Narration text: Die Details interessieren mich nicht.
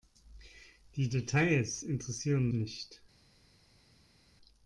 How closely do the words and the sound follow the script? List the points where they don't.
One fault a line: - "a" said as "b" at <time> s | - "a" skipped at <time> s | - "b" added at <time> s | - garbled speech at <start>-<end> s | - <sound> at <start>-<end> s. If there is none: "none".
- "mich" skipped at 2.5 s